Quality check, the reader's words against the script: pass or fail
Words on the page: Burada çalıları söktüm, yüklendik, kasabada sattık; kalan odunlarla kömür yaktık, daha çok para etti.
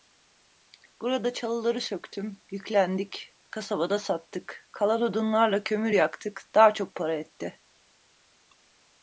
pass